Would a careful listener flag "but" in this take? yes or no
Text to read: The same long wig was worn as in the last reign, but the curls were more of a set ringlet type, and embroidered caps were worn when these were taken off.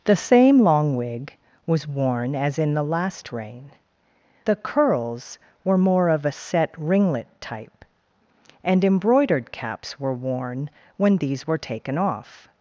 yes